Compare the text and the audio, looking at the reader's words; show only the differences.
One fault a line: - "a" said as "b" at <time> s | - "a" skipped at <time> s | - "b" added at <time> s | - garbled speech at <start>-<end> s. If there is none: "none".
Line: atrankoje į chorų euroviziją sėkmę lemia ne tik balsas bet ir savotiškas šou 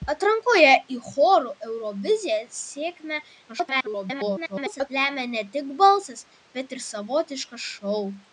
- garbled speech at 3.5-4.9 s